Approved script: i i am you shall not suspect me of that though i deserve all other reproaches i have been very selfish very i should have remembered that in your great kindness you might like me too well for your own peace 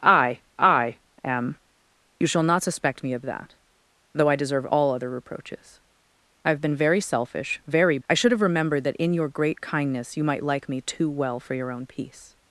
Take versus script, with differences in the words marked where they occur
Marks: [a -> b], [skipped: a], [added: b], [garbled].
i i am you shall not suspect me of that though i deserve all other reproaches i have been very selfish very i should have remembered that in your great kindness you might like me too well for your own peace